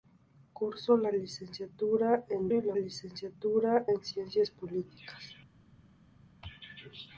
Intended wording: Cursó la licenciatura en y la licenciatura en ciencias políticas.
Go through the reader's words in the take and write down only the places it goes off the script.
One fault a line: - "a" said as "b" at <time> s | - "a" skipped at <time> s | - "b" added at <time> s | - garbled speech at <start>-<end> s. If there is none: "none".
none